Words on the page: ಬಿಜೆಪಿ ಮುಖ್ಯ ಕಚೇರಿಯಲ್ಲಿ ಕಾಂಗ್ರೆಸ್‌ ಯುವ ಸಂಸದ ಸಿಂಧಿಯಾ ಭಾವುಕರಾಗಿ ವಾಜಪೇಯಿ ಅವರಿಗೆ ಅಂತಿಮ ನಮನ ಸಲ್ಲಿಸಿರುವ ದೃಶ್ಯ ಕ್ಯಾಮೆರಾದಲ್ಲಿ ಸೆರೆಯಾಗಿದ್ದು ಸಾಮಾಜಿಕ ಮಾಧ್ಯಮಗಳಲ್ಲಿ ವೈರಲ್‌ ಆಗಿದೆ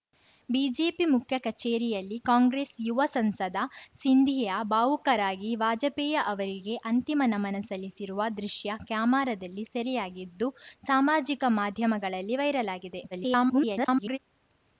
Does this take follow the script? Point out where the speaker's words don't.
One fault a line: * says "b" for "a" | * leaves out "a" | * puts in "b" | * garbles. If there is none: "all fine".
* garbles